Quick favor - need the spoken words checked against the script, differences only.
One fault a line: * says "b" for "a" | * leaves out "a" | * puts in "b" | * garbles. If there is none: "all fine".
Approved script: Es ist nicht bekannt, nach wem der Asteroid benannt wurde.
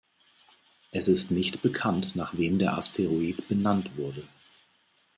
all fine